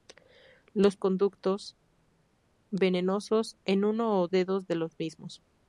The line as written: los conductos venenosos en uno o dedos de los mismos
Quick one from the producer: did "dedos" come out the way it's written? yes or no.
yes